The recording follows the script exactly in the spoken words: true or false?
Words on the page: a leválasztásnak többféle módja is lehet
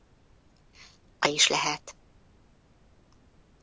false